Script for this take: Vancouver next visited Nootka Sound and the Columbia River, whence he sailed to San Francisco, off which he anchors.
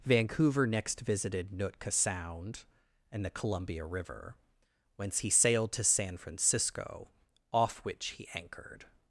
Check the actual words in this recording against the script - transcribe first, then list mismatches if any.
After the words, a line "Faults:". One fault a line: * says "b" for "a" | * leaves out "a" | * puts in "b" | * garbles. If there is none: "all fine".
Vancouver next visited Nootka Sound and the Columbia River, whence he sailed to San Francisco, off which he anchored.
Faults:
* says "anchored" for "anchors"